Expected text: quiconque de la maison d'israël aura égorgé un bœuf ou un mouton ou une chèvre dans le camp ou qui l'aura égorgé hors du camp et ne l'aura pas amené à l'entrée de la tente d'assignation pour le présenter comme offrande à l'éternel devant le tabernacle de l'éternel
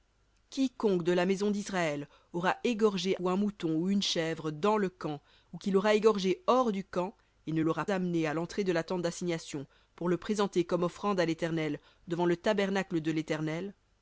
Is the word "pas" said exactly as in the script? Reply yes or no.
no